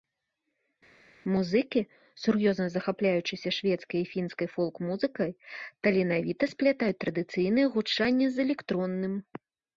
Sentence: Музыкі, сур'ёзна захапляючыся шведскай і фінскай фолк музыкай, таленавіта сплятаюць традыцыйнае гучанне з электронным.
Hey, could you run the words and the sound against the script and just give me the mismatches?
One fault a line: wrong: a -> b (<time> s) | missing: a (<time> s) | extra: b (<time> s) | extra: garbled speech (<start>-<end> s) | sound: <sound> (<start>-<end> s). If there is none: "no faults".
no faults